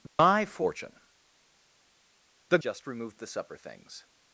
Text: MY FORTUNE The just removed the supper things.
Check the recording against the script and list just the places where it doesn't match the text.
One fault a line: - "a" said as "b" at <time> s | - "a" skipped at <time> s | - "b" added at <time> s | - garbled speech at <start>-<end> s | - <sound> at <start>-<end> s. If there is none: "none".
- dropout at 0.1-0.2 s